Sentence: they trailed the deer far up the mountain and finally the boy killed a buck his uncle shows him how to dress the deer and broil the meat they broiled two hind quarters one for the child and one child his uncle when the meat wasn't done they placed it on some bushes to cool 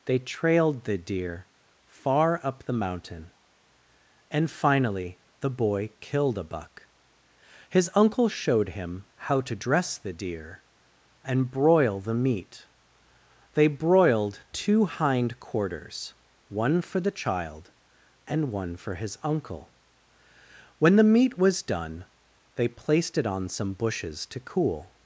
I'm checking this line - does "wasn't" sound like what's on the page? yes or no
no